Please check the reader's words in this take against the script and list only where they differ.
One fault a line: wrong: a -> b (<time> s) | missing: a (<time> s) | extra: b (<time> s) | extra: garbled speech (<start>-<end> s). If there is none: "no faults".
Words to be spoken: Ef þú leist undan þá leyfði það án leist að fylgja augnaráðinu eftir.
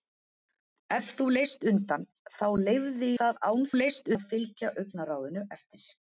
no faults